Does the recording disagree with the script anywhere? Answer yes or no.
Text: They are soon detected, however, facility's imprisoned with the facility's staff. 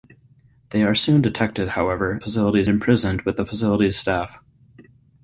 no